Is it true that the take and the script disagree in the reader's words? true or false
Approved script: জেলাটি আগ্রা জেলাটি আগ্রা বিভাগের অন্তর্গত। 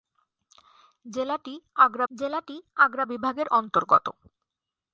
false